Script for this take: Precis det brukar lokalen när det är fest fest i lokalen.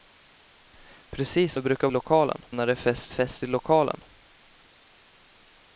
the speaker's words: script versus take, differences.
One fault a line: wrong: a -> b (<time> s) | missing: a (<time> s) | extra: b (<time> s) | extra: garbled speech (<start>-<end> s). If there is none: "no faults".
no faults